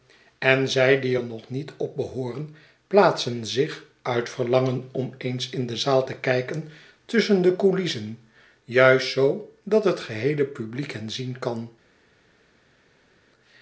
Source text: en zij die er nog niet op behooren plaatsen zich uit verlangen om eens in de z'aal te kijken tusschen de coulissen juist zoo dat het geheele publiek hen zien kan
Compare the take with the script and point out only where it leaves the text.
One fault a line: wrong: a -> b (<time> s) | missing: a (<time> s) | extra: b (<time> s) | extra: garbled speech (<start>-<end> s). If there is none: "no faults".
no faults